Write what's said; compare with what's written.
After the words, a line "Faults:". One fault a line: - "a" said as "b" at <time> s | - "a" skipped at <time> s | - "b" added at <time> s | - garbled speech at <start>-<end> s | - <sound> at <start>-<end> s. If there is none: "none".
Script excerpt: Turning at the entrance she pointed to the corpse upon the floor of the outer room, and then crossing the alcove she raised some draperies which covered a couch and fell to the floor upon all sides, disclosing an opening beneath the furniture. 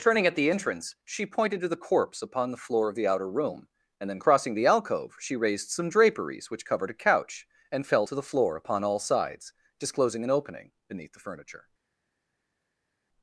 Turning at the entrance she pointed to the corpse upon the floor of the outer room, and then crossing the alcove she raised some draperies which covered a couch and fell to the floor upon all sides, disclosing an opening beneath the furniture.
Faults:
none